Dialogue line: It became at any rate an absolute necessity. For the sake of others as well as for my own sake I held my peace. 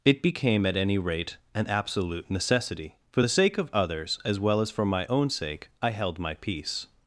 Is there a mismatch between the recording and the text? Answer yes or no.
no